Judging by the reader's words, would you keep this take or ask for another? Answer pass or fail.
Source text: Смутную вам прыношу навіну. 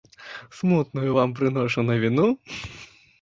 pass